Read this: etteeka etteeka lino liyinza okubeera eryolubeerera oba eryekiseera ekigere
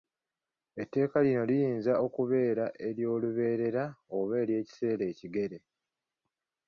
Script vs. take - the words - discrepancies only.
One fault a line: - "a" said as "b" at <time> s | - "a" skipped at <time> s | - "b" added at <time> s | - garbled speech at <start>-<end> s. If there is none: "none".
- "etteeka" skipped at 1.2 s